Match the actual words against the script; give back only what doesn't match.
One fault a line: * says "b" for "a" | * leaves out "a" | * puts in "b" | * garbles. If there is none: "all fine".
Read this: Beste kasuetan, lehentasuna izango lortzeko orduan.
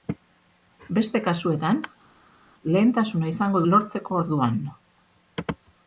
all fine